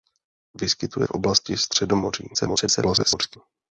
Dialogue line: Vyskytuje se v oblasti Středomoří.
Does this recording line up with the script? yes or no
no